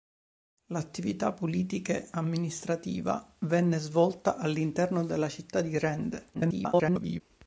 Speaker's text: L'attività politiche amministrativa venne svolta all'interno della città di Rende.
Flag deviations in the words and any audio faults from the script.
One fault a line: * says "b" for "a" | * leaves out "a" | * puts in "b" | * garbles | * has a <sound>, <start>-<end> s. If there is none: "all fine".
* garbles